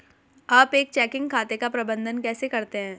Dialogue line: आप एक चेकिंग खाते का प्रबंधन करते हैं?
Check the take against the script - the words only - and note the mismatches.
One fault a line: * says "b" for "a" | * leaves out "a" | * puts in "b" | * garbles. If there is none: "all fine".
* puts in "कैसे"